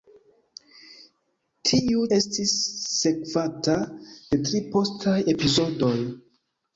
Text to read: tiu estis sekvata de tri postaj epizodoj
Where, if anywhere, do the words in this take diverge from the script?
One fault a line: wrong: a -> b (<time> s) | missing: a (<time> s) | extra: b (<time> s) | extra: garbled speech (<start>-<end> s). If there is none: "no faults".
no faults